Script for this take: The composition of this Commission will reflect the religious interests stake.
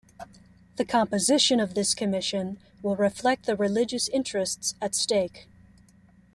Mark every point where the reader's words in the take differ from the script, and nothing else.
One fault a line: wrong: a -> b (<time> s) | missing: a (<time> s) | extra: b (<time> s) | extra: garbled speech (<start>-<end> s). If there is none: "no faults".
extra: at (4.8 s)